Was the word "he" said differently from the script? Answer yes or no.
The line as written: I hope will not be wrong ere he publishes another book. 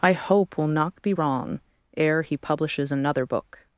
no